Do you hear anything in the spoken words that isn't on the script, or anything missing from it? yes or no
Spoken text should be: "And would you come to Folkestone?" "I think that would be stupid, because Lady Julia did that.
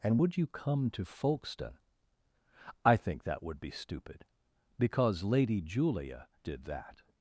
no